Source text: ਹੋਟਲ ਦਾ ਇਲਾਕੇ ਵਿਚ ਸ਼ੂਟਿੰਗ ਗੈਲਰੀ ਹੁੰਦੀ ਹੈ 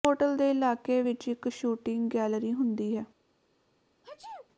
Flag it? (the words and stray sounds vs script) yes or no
yes